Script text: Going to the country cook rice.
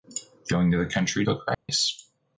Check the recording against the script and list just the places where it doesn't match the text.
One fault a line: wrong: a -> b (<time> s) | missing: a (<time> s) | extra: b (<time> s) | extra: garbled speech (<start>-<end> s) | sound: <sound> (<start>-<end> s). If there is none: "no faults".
sound: dropout (1.5-1.7 s)